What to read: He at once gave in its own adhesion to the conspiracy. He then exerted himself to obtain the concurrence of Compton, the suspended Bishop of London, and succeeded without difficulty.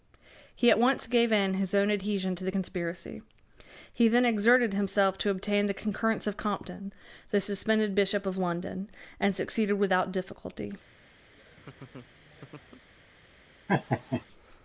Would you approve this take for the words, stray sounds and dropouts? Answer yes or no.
no